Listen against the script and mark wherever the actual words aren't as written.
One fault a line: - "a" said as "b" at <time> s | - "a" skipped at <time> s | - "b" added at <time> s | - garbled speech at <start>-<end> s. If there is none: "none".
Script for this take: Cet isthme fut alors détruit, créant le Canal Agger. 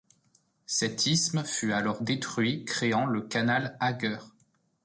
none